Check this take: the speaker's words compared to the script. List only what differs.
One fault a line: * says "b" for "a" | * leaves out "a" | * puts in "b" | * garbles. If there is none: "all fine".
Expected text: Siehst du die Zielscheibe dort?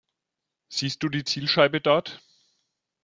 all fine